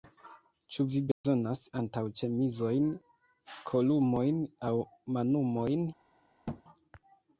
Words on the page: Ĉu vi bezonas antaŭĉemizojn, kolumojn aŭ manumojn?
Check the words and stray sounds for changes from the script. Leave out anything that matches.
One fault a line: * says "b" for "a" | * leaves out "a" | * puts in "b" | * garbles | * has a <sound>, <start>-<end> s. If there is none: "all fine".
* has a dropout, 1.1-1.2 s
* has a thud, 6.5-6.6 s